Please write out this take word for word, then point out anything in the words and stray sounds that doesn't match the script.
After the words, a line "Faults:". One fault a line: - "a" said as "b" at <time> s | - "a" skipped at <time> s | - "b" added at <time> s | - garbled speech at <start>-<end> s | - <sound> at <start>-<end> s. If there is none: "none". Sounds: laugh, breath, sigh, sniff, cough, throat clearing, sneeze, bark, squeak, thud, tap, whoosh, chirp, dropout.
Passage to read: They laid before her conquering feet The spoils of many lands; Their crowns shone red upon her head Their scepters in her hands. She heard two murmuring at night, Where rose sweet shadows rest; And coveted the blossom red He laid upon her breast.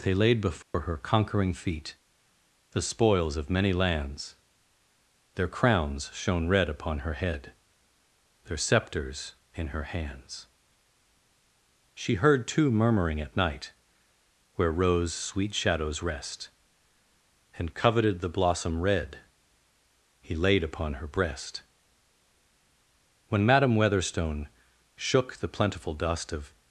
They laid before her conquering feet The spoils of many lands; Their crowns shone red upon her head Their scepters in her hands. She heard two murmuring at night, Where rose sweet shadows rest; And coveted the blossom red He laid upon her breast. When Madam Weatherstone shook the plentiful dust of
Faults:
- dropout at 0.6-0.7 s
- "When Madam Weatherstone shook the plentiful dust of" added at 23.3 s